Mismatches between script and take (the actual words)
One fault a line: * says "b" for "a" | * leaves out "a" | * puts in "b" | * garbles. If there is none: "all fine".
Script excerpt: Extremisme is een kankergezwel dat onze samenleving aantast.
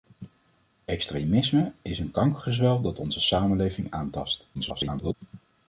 * garbles